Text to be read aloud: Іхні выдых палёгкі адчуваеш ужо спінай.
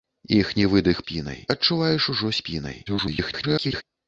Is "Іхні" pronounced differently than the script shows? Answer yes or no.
no